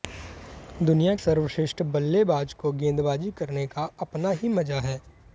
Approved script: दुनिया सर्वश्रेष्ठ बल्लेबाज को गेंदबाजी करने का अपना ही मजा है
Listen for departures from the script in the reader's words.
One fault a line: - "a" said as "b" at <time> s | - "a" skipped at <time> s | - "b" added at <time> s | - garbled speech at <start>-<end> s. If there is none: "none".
none